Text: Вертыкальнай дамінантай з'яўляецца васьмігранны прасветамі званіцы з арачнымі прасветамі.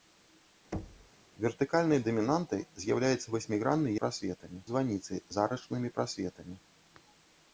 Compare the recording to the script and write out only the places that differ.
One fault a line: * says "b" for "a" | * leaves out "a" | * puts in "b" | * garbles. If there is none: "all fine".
all fine